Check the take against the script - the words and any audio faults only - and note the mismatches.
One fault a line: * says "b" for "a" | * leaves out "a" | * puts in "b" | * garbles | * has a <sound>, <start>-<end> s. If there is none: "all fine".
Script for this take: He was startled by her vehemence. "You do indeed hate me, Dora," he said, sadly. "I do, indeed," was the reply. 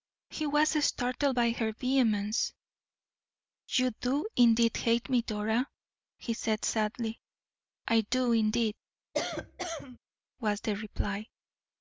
* has a cough, 9.1-10.0 s